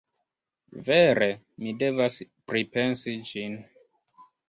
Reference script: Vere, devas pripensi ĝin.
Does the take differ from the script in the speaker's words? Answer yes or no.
yes